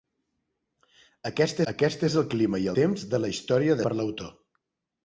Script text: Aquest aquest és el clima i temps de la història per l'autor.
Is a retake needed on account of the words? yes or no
no